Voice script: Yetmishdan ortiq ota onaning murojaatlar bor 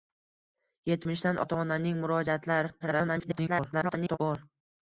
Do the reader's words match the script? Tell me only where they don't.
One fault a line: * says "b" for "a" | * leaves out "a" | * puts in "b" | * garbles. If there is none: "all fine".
* leaves out "ortiq"
* garbles